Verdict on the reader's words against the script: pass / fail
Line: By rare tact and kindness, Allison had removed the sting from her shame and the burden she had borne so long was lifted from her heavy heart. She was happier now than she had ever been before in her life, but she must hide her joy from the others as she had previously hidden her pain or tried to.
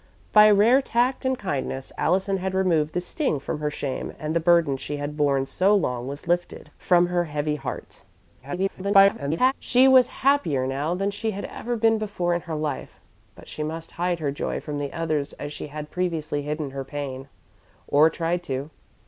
fail